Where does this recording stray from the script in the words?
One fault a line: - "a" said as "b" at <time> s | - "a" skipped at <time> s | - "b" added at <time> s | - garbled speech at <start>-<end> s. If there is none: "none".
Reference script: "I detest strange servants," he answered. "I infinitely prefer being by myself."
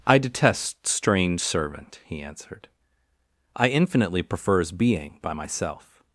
- "servants" said as "servant" at 1.4 s
- "prefer" said as "prefers" at 4.2 s